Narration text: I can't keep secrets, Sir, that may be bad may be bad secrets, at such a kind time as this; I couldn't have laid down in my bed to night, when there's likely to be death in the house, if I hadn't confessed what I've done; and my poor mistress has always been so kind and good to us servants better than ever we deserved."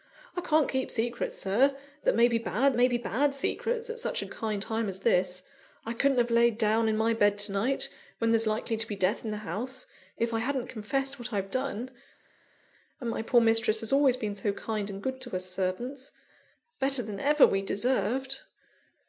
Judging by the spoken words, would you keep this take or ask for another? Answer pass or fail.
pass